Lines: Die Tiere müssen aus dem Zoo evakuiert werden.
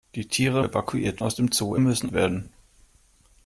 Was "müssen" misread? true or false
true